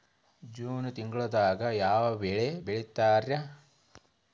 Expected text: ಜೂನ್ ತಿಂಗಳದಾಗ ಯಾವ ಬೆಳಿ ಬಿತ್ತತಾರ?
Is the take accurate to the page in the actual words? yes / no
yes